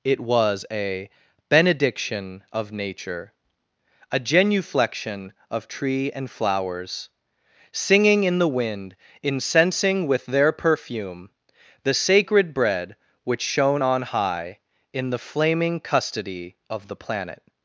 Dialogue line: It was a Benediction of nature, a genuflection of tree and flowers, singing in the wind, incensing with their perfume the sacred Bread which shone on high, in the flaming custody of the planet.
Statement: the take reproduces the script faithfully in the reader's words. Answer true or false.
true